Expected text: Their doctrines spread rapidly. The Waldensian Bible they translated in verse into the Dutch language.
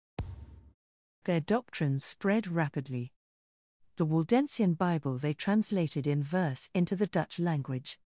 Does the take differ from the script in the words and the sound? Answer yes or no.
yes